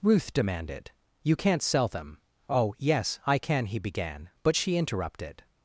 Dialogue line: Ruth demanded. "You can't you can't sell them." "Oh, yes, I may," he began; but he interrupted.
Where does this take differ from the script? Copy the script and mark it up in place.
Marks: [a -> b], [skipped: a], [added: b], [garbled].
Ruth demanded. "You can't [skipped: you can't] sell them." "Oh, yes, I [may," -> can] he began; but [he -> she] interrupted.